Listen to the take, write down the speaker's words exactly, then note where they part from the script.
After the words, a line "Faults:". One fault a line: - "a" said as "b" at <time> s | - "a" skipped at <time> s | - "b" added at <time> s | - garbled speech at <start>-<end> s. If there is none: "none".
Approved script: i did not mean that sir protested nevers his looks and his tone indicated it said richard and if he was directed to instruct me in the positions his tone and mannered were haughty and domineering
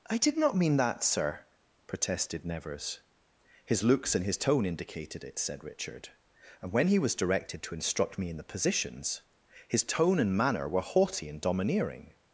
i did not mean that sir protested nevers his looks and his tone indicated it said richard and when he was directed to instruct me in the positions his tone and manner were haughty and domineering
Faults:
- "if" said as "when" at 6.7 s
- "mannered" said as "manner" at 10.4 s